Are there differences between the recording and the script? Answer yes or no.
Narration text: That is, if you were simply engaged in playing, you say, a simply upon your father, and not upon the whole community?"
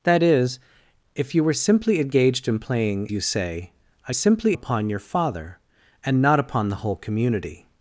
no